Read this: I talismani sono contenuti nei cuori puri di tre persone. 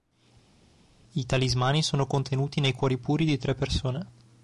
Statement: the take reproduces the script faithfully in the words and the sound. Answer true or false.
true